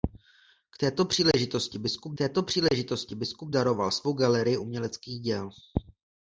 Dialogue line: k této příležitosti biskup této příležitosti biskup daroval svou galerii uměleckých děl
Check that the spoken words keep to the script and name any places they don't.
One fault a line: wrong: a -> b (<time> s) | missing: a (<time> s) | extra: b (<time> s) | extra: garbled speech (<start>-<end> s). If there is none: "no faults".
no faults